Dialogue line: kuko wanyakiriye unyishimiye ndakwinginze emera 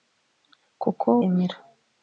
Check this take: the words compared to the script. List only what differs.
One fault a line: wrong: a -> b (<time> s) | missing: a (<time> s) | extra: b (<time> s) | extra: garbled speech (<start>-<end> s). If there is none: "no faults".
missing: wanyakiriye unyishimiye ndakwinginze (1.1 s)